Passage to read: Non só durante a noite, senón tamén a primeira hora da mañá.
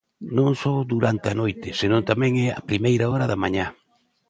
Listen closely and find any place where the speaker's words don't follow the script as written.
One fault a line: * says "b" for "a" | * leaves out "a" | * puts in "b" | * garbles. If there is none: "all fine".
all fine